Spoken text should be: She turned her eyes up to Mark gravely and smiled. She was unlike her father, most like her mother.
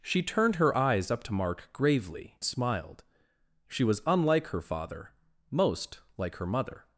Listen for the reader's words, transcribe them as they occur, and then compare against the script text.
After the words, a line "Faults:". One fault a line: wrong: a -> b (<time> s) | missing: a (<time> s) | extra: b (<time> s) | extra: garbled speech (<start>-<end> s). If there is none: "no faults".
She turned her eyes up to Mark gravely smiled. She was unlike her father, most like her mother.
Faults:
missing: and (2.4 s)